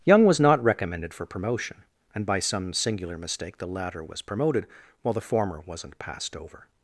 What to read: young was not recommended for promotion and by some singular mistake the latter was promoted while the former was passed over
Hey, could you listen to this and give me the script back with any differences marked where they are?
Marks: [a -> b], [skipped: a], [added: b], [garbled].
young was not recommended for promotion and by some singular mistake the latter was promoted while the former [was -> wasn't] passed over